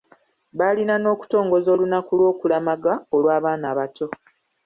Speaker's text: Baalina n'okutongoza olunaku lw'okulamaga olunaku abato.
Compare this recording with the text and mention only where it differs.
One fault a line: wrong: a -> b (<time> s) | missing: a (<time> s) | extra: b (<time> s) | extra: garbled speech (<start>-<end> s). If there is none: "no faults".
wrong: olunaku -> olw'abaana (3.2 s)